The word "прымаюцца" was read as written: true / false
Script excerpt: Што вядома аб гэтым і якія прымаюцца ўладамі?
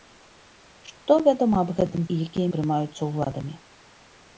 true